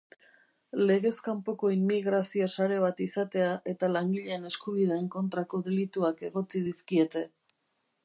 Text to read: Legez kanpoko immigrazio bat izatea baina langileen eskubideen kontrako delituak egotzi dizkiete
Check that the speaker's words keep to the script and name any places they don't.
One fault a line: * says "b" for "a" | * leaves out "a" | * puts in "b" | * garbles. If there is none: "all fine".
* puts in "sare"
* says "eta" for "baina"